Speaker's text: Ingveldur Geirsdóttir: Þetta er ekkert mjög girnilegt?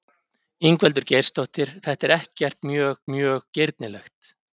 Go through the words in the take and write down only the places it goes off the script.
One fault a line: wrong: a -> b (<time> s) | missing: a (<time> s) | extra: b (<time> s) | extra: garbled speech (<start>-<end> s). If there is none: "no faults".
extra: mjög (3.2 s)